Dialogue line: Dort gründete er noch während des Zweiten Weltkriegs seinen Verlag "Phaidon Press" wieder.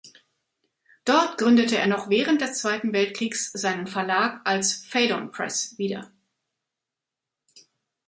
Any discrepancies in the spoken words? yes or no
yes